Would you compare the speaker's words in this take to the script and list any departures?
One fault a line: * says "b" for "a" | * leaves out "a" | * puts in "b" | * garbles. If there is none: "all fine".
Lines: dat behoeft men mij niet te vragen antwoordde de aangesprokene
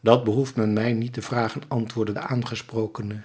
all fine